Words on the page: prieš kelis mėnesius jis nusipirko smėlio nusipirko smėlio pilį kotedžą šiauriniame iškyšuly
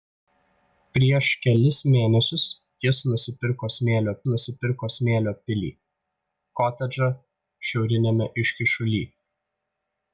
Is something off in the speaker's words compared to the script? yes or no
no